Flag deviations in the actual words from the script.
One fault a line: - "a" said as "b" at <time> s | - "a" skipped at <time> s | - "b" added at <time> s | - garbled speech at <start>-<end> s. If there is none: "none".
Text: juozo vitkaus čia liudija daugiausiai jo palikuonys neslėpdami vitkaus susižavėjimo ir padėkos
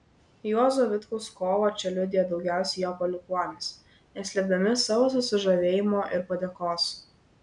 - "kovą" added at 1.4 s
- "vitkaus" said as "savo" at 4.8 s